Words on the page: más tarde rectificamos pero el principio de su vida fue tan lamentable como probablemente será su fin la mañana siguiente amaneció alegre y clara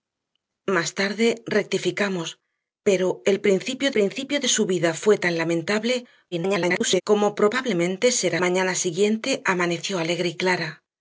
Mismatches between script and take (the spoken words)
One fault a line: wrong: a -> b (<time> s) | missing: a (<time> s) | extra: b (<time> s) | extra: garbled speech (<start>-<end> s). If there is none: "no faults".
extra: principio (3.9 s)
extra: garbled speech (6.3-7.0 s)
missing: su fin la (8.4 s)